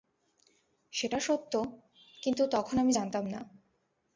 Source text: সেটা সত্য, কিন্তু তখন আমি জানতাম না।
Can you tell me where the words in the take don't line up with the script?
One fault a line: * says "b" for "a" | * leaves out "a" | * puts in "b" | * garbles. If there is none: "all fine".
all fine